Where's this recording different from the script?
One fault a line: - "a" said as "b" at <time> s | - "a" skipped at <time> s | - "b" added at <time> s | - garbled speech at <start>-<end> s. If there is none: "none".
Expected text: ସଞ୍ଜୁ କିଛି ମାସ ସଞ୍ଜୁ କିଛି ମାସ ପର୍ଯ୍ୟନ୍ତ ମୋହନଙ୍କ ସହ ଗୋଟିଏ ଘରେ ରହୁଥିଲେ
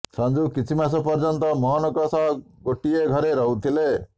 - "ସଞ୍ଜୁ କିଛି ମାସ" skipped at 1.0 s